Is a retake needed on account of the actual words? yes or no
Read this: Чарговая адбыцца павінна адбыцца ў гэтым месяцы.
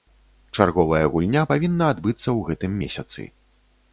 yes